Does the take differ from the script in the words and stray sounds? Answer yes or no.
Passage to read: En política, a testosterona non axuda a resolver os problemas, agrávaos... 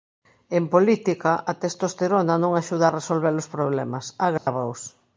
yes